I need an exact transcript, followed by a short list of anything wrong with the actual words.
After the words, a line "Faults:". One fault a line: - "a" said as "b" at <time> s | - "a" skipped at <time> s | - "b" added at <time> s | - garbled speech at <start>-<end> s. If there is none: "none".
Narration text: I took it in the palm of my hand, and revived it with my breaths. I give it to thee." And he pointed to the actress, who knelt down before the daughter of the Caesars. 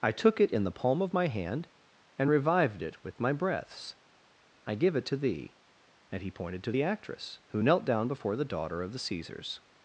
I took it in the palm of my hand, and revived it with my breaths. I give it to thee." And he pointed to the actress, who knelt down before the daughter of the Caesars.
Faults:
none